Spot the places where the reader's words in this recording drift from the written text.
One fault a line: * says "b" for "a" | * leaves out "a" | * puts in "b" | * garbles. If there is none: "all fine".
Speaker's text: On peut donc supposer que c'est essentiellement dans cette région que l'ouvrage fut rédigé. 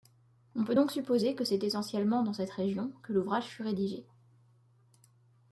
all fine